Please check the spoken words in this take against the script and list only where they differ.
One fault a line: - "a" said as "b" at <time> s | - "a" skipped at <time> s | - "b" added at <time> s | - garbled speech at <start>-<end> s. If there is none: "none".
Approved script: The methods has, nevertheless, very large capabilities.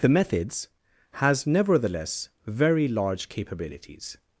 none